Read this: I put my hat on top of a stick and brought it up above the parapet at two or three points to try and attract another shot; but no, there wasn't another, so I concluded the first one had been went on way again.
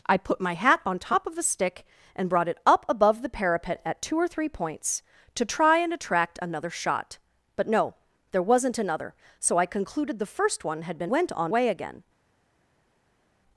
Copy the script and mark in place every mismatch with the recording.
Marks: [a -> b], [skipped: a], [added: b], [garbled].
I put my hat on top of a stick and brought it up above the parapet at two or three points to try and attract another shot; but no, there wasn't another, so I concluded the first one had been went on way again.